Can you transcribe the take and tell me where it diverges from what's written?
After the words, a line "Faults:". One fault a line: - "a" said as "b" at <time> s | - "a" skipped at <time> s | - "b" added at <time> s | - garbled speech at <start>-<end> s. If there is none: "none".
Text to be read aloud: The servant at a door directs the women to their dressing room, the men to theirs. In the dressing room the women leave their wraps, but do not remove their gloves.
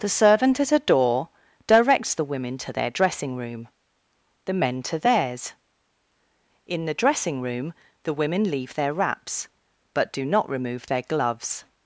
The servant at a door directs the women to their dressing room, the men to theirs. In the dressing room the women leave their wraps, but do not remove their gloves.
Faults:
none